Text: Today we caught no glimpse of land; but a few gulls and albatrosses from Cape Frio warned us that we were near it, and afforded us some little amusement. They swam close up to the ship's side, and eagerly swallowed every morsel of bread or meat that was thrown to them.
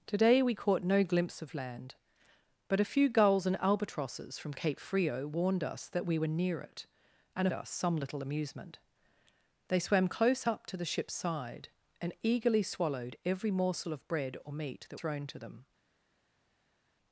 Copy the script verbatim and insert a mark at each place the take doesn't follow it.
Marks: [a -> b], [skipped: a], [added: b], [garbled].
Today we caught no glimpse of land; but a few gulls and albatrosses from Cape Frio warned us that we were near it, and [skipped: afforded] us some little amusement. They swam close up to the ship's side, and eagerly swallowed every morsel of bread or meat that [skipped: was] thrown to them.